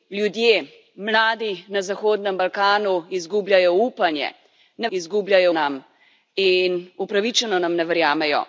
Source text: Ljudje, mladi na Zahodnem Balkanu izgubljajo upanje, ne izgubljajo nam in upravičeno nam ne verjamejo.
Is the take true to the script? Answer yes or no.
yes